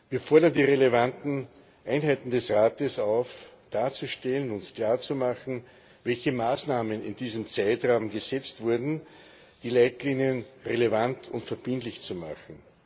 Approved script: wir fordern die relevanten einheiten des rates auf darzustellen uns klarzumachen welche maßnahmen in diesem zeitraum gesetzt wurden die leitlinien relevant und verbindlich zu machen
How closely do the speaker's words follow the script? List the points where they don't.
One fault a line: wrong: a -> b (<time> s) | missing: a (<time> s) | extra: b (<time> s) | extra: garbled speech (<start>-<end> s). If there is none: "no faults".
no faults